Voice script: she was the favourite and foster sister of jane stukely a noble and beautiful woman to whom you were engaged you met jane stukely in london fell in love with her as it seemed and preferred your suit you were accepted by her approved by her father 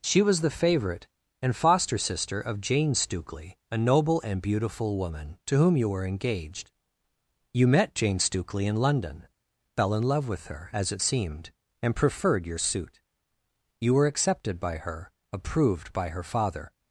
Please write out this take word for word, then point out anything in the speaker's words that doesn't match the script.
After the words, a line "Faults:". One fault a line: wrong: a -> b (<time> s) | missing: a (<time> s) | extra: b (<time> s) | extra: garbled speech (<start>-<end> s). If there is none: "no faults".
she was the favourite and foster sister of jane stukely a noble and beautiful woman to whom you were engaged you met jane stukely in london fell in love with her as it seemed and preferred your suit you were accepted by her approved by her father
Faults:
no faults